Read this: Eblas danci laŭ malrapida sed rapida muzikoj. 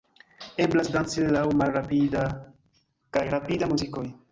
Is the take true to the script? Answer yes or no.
no